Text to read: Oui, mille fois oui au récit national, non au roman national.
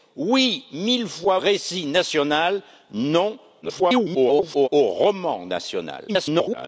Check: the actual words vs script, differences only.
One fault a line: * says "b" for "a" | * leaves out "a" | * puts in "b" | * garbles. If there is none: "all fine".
* leaves out "oui au"
* garbles
* garbles